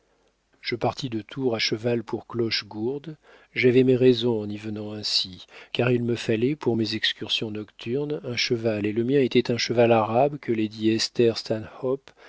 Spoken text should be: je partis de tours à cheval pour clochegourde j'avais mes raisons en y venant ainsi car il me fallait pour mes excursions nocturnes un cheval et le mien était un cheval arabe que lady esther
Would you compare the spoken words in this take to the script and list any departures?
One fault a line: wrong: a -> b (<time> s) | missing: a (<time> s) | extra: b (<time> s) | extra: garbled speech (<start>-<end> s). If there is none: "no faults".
no faults